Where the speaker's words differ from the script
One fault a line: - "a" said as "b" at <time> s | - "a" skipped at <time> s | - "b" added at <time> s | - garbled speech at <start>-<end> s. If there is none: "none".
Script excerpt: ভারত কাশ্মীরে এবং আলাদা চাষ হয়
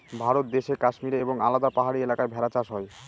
- "দেশে" added at 0.6 s
- "পাহাড়ি এলাকায় ভেড়া" added at 1.7 s